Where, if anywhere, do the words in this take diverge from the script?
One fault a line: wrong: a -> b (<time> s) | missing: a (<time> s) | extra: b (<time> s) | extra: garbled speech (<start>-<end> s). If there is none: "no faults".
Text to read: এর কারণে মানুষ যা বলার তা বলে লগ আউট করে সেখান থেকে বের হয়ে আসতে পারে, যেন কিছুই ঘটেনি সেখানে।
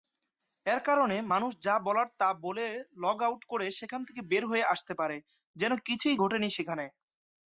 no faults